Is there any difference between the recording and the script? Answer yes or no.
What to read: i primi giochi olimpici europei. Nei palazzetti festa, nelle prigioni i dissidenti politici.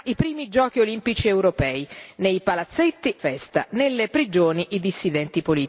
no